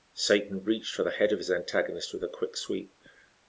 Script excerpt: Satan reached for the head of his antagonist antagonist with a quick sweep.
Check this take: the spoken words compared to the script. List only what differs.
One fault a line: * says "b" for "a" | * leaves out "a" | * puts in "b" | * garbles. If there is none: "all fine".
* leaves out "antagonist"